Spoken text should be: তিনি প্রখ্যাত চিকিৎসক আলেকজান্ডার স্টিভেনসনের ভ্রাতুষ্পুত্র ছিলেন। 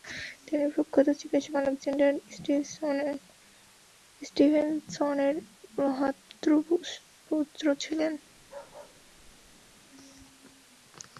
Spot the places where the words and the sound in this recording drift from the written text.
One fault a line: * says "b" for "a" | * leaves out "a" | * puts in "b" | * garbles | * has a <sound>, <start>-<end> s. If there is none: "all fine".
* has a bark, 8.4-9.8 s